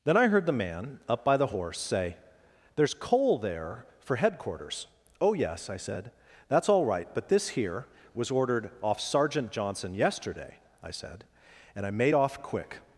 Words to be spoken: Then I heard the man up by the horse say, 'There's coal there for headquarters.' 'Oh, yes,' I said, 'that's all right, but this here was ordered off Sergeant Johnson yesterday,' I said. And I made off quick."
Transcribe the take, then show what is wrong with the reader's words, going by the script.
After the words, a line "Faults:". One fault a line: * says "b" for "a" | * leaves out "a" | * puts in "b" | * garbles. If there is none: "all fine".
Then I heard the man up by the horse say, 'There's coal there for headquarters.' 'Oh, yes,' I said, 'that's all right, but this here was ordered off Sergeant Johnson yesterday,' I said. And I made off quick."
Faults:
all fine